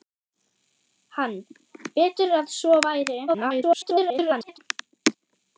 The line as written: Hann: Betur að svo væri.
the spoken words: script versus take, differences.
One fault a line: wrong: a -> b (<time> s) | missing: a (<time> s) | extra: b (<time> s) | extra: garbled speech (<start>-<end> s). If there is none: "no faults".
extra: garbled speech (3.3-4.6 s)